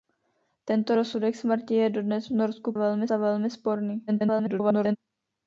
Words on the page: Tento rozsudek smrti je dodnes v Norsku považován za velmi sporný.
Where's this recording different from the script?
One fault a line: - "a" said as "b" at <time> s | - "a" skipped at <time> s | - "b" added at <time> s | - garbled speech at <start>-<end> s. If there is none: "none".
- "považován" said as "velmi" at 2.7 s
- garbled speech at 4.1-5.0 s